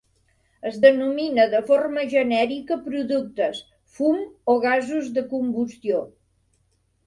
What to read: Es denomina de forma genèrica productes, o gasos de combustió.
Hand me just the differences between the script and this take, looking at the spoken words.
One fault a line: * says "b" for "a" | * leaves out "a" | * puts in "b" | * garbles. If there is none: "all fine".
* puts in "fum"